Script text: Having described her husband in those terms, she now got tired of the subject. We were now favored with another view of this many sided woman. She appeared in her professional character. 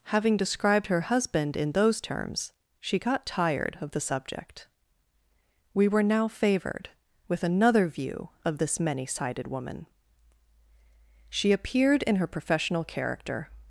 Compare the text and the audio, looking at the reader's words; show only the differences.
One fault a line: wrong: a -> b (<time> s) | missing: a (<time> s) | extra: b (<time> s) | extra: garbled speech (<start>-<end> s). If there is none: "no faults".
missing: now (3.0 s)